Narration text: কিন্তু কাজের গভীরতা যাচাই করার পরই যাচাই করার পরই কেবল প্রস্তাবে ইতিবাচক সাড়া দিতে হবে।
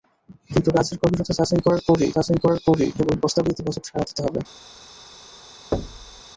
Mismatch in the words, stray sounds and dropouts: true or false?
true